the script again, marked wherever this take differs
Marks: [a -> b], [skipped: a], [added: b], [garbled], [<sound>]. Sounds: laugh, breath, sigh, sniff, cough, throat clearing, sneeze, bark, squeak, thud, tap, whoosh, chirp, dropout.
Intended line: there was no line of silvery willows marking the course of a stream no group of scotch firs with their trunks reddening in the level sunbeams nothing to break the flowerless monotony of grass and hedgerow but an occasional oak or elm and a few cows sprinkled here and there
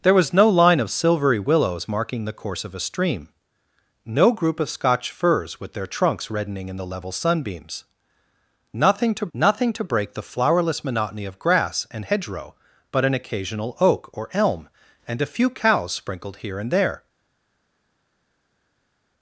there was no line of silvery willows marking the course of a stream no group of scotch firs with their trunks reddening in the level sunbeams nothing to [added: nothing to] break the flowerless monotony of grass and hedgerow but an occasional oak or elm and a few cows sprinkled here and there